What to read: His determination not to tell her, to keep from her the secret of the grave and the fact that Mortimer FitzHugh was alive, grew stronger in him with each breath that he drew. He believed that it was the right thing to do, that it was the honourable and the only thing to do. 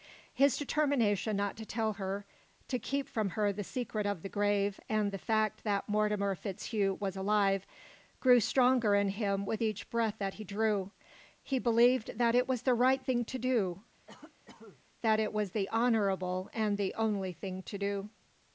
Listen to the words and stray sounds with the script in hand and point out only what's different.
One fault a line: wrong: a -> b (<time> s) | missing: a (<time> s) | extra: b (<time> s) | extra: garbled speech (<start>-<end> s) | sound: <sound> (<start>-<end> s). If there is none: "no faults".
sound: cough (14.1-14.8 s)